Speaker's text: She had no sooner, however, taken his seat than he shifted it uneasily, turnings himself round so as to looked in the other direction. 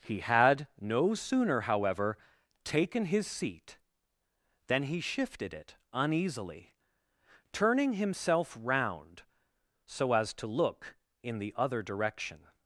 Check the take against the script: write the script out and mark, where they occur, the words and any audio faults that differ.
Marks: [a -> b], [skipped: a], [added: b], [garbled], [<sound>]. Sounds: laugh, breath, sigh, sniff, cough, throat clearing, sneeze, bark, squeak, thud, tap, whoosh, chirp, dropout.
[She -> He] had no sooner, however, taken his seat than he shifted it uneasily, [turnings -> turning] himself round so as to [looked -> look] in the other direction.